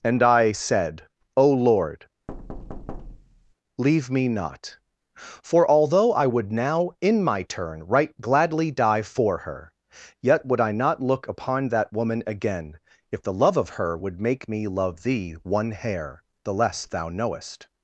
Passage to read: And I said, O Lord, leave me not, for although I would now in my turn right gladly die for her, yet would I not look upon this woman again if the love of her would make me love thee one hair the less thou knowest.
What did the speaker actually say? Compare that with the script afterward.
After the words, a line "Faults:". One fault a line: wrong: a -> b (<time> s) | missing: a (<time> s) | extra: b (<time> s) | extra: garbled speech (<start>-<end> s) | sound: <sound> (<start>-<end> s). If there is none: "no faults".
And I said, O Lord, leave me not, for although I would now in my turn right gladly die for her, yet would I not look upon that woman again if the love of her would make me love thee one hair the less thou knowest.
Faults:
sound: thud (2.3-3.5 s)
wrong: this -> that (11.7 s)